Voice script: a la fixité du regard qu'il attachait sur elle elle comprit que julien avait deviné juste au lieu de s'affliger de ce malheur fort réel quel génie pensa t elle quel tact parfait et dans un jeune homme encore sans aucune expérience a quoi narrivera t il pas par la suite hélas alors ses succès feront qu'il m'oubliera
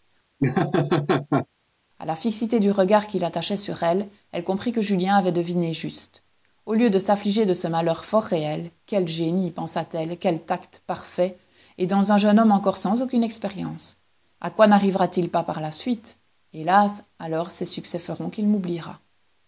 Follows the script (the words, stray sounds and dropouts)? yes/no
no